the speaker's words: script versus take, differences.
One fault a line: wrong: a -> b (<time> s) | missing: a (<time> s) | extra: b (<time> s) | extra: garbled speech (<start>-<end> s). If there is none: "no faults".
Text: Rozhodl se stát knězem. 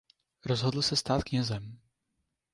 no faults